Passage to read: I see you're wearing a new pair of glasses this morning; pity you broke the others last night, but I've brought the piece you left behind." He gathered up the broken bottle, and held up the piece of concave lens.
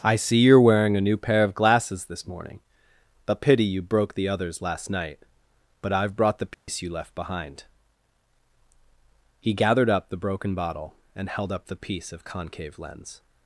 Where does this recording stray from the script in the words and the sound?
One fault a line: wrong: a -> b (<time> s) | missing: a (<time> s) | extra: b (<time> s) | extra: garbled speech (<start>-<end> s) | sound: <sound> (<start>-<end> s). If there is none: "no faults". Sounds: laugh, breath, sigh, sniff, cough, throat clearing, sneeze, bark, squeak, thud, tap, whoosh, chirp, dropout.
extra: a (3.3 s)
sound: dropout (6.5-6.7 s)